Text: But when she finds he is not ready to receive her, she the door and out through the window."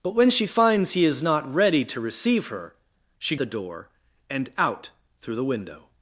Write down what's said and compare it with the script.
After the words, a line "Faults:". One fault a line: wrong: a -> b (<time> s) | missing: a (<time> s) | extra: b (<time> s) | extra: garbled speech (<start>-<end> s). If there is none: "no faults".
But when she finds he is not ready to receive her, she the door and out through the window."
Faults:
no faults